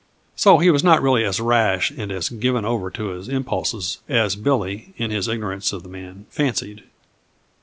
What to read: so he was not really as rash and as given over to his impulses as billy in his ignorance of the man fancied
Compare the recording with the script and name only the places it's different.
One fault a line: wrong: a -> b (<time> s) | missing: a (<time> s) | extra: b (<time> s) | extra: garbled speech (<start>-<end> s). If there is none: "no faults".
no faults